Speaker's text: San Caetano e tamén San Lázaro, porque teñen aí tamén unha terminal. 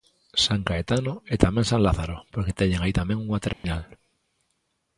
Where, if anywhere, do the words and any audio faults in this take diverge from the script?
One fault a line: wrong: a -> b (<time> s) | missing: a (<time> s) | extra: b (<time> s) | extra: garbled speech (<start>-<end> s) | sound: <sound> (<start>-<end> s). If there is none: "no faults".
sound: dropout (3.5-3.6 s)